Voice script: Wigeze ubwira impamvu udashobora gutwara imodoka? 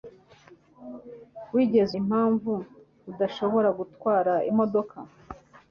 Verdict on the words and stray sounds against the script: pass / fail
fail